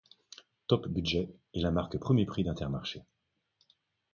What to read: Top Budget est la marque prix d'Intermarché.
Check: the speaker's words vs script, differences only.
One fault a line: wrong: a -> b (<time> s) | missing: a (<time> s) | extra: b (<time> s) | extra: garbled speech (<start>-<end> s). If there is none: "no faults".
extra: premier (2.0 s)